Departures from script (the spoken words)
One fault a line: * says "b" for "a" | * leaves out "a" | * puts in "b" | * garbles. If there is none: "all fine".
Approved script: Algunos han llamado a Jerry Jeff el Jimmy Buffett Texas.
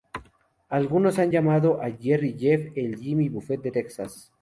* puts in "de"